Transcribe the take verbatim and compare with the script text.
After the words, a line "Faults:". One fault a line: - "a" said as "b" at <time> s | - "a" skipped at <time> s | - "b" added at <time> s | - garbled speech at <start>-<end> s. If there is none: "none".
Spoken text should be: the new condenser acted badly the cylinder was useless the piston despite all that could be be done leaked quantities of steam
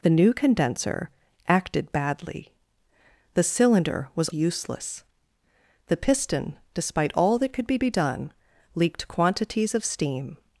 the new condenser acted badly the cylinder was useless the piston despite all that could be be done leaked quantities of steam
Faults:
none